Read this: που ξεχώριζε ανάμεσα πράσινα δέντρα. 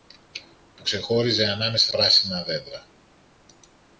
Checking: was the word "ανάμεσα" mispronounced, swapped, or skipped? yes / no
no